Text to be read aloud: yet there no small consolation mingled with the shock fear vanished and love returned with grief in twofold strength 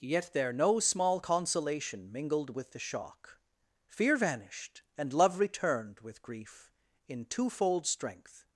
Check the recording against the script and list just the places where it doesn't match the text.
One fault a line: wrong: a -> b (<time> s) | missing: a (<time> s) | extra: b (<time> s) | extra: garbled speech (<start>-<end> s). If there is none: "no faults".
no faults